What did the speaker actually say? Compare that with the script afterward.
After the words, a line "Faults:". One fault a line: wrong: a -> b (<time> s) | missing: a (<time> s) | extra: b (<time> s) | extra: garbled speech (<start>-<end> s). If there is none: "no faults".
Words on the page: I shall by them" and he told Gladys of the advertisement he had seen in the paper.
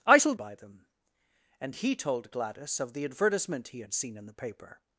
I shall by them" and he told Gladys of the advertisement he had seen in the paper.
Faults:
no faults